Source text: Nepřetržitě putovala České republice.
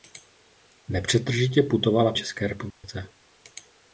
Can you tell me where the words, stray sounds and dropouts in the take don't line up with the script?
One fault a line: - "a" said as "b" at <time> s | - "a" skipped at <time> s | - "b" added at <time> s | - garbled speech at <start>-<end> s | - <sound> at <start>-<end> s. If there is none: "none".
- dropout at 2.7-2.8 s